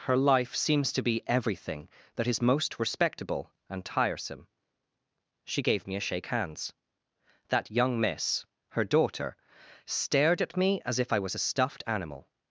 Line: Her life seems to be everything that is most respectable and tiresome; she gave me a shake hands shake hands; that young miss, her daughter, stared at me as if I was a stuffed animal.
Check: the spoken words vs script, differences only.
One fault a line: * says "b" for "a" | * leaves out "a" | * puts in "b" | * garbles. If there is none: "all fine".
* leaves out "shake hands"